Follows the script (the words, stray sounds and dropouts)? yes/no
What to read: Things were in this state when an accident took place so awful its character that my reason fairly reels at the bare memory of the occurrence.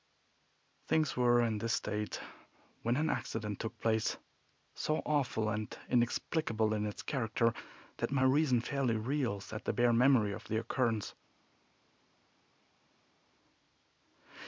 no